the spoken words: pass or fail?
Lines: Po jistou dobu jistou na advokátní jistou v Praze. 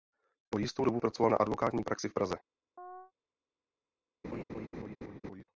fail